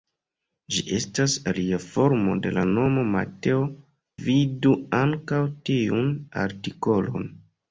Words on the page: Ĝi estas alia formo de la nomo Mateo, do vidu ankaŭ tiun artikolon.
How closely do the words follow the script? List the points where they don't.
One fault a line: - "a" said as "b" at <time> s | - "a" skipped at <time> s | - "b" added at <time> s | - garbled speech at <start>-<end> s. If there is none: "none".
- "do" skipped at 3.6 s